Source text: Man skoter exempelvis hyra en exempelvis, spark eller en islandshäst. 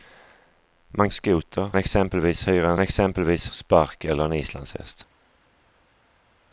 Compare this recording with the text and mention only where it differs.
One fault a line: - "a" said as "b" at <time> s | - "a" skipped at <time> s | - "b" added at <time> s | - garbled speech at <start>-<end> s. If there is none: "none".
none